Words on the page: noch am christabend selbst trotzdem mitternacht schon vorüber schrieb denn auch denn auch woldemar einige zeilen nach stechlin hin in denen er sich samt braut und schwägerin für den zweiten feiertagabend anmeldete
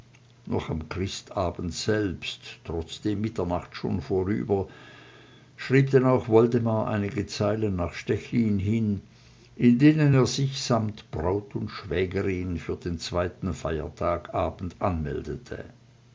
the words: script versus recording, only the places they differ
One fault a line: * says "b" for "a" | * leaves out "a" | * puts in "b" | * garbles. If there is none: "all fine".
* leaves out "denn auch"